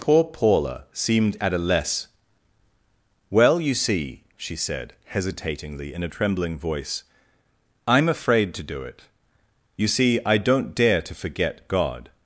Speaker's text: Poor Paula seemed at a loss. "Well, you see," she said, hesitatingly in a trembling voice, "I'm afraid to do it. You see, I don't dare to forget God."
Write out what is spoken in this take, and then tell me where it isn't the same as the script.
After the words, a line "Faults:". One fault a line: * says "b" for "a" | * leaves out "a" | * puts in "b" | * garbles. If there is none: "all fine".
Poor Paula seemed at a less. "Well, you see," she said, hesitatingly in a trembling voice, "I'm afraid to do it. You see, I don't dare to forget God."
Faults:
* says "less" for "loss"